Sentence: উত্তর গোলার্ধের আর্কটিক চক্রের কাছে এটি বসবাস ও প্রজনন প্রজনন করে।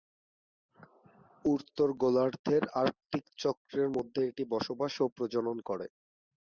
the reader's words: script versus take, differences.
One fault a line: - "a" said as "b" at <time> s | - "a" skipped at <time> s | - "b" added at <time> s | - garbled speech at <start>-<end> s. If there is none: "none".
- "কাছে" said as "মধ্যে" at 3.9 s
- "প্রজনন" skipped at 5.6 s